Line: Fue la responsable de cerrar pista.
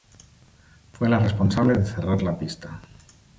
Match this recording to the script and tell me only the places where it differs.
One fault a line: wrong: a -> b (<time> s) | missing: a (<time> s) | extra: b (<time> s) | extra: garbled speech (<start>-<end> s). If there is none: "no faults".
extra: la (2.2 s)